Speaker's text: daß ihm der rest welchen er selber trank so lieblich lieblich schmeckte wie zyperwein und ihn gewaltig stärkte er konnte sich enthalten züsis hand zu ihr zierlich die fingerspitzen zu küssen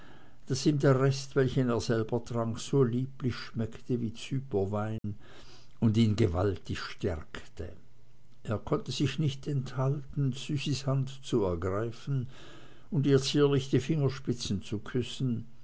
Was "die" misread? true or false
false